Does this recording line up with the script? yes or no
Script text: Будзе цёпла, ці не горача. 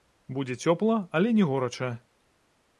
no